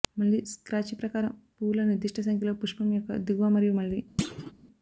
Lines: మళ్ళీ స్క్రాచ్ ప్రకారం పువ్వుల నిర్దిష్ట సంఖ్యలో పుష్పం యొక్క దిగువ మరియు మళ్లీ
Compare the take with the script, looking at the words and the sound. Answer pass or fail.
fail